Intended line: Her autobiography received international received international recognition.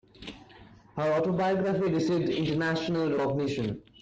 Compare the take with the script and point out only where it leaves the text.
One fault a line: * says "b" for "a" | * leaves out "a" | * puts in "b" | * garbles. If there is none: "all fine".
* leaves out "received international"